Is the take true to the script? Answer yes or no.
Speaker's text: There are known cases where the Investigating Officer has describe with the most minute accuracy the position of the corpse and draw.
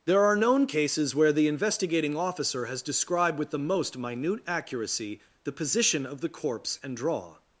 no